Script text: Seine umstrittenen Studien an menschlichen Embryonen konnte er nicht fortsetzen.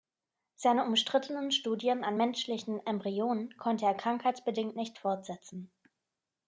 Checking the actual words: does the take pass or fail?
fail